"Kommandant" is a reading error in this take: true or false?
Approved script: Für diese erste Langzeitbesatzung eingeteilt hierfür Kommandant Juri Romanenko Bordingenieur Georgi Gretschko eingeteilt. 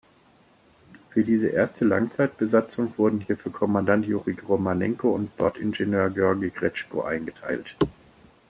false